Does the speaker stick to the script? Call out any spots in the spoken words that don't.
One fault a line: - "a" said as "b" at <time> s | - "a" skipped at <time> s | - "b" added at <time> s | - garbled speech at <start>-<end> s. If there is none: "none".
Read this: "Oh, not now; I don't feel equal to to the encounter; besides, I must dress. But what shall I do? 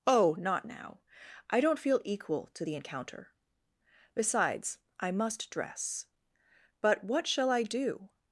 - "to" skipped at 2.6 s